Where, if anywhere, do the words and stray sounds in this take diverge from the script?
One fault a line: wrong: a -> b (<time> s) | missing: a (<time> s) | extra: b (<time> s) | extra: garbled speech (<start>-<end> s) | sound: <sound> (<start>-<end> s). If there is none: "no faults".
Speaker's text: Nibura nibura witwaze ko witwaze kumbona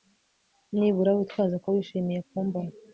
missing: nibura (1.1 s)
wrong: witwaze -> wishimiye (1.7 s)